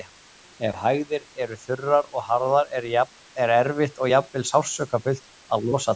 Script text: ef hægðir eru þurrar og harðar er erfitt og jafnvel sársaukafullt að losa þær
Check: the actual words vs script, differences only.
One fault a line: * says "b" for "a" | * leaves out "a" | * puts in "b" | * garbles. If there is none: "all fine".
all fine